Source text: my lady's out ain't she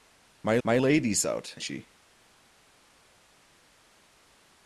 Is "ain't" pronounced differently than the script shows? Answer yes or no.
yes